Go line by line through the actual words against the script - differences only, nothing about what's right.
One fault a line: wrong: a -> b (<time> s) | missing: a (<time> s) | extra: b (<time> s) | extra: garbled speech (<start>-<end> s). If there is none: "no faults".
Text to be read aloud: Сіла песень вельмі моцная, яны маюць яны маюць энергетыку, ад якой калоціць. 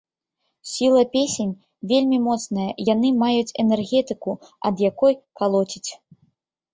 missing: яны маюць (3.5 s)